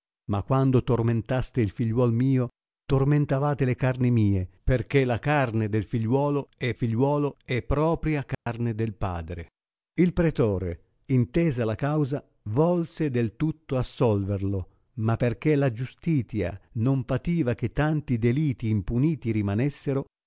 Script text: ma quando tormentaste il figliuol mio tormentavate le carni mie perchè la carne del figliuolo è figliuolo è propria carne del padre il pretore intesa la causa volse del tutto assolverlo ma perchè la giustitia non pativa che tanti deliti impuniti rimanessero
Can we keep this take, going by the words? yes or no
yes